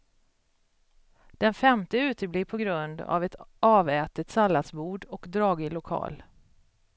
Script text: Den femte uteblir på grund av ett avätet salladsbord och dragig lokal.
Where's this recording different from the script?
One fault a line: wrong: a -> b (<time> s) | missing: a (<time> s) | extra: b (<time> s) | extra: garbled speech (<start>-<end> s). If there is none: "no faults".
no faults